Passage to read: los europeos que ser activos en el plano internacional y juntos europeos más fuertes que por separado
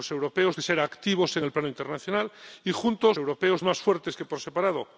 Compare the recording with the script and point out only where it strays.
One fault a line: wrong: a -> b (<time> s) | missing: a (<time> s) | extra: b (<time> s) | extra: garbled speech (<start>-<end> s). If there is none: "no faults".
no faults